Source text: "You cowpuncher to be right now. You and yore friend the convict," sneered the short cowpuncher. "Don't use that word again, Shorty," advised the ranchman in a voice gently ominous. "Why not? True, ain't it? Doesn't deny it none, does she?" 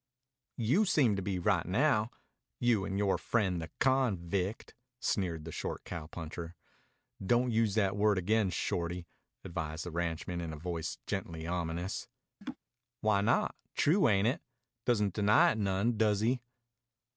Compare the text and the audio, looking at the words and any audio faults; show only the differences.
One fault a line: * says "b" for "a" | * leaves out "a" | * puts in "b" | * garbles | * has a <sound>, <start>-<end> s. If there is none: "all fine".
* says "seem" for "cowpuncher"
* has a laugh, 12.4-12.6 s
* says "he" for "she"